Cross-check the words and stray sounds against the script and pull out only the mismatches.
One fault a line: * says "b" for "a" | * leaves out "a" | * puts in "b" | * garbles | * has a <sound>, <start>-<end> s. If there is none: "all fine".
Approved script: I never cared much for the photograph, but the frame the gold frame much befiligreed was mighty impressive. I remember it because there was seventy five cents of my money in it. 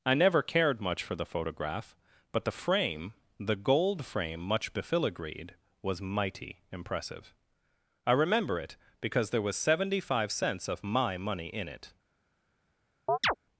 * has a chirp, 13.1-13.3 s